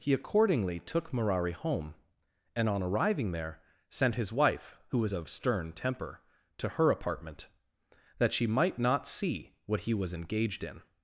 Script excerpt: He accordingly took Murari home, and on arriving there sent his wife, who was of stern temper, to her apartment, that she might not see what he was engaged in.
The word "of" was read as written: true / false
true